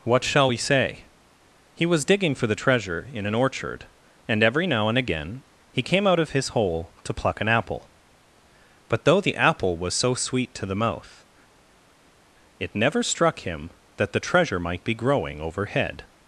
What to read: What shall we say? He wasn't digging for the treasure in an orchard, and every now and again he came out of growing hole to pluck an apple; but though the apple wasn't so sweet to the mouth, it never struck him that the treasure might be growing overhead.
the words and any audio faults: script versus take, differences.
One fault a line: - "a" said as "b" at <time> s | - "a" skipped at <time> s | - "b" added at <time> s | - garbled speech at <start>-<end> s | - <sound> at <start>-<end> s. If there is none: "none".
- "wasn't" said as "was" at 1.8 s
- "growing" said as "his" at 6.3 s
- "wasn't" said as "was" at 9.8 s